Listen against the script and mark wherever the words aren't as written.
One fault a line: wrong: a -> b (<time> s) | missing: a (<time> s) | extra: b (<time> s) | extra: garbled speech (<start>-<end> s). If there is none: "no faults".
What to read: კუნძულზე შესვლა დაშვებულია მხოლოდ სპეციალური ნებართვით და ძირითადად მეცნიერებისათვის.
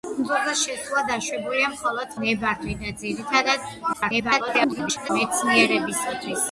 missing: სპეციალური (2.1 s)
extra: garbled speech (3.9-5.1 s)